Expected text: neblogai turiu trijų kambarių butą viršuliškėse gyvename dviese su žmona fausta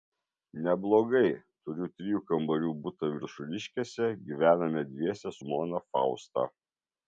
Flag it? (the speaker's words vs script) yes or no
yes